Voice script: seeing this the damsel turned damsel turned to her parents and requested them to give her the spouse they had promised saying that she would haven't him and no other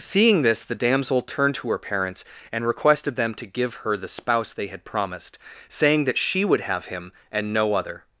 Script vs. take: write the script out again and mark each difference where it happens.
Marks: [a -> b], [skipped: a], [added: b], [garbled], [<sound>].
seeing this the damsel turned [skipped: damsel turned] to her parents and requested them to give her the spouse they had promised saying that she would [haven't -> have] him and no other